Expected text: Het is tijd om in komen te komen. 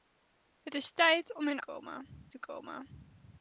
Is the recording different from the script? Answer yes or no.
no